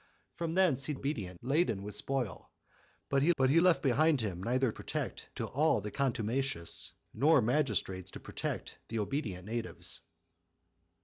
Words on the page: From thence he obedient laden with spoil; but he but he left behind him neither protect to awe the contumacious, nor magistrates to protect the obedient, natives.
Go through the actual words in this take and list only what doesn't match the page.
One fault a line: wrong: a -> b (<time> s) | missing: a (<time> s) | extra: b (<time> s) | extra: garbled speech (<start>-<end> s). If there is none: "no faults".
no faults